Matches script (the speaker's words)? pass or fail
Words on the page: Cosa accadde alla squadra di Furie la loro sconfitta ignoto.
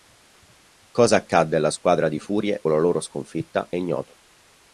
pass